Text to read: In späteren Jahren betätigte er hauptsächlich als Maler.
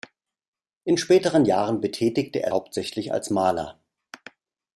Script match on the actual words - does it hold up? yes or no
yes